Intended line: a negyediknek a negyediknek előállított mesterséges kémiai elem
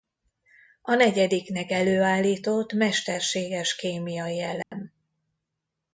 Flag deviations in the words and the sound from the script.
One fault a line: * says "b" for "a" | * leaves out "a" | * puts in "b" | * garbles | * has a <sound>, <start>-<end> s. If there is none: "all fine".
* leaves out "a negyediknek"
* has a dropout, 4.6-4.7 s